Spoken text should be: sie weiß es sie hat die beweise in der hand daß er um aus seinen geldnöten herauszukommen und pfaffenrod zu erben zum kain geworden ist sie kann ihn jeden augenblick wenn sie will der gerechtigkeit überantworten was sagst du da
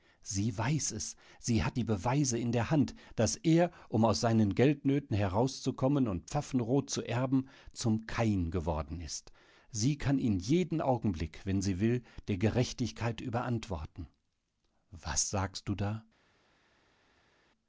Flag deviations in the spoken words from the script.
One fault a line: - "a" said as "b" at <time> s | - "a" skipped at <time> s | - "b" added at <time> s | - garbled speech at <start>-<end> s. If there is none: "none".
none